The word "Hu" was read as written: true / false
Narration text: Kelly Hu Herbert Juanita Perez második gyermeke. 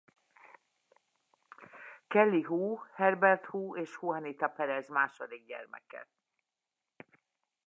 true